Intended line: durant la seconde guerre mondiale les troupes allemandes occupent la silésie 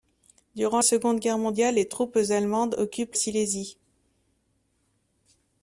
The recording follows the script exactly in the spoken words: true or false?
false